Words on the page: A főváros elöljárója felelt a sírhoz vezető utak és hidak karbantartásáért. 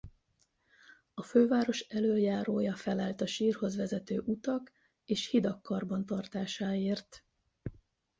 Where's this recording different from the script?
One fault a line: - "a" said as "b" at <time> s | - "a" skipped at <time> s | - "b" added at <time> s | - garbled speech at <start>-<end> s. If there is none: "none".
none